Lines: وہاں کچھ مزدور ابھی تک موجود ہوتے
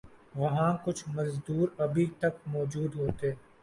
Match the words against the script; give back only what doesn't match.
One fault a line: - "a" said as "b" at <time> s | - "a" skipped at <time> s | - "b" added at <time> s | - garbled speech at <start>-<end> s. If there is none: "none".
none